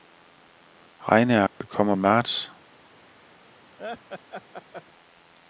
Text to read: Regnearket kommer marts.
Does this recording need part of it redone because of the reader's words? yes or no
no